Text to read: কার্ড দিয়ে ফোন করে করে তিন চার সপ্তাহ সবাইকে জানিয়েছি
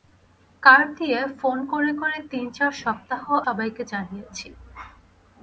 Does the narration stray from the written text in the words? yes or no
no